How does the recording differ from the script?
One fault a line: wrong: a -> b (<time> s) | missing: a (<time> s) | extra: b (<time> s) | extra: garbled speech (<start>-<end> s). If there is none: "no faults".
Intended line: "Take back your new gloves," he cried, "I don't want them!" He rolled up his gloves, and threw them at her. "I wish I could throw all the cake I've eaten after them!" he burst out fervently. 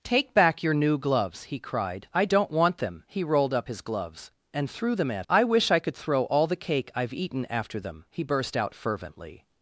missing: her (5.3 s)